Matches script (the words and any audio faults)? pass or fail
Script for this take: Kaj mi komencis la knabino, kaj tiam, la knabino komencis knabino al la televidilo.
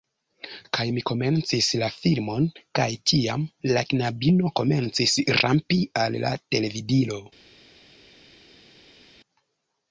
fail